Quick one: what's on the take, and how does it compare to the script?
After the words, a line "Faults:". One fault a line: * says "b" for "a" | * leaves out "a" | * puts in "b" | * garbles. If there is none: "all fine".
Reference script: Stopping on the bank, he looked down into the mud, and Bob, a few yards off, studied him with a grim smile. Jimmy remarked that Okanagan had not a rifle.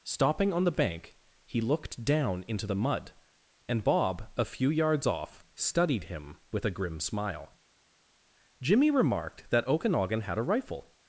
Stopping on the bank, he looked down into the mud, and Bob, a few yards off, studied him with a grim smile. Jimmy remarked that Okanagan had a rifle.
Faults:
* leaves out "not"